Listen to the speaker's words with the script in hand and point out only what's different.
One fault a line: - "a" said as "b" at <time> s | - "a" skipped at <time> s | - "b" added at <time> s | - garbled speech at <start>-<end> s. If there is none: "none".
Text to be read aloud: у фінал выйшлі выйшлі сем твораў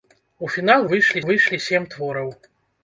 none